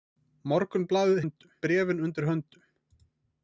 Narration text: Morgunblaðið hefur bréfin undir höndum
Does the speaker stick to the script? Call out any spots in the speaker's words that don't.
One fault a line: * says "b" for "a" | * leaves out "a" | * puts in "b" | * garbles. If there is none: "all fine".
* says "höndum" for "hefur"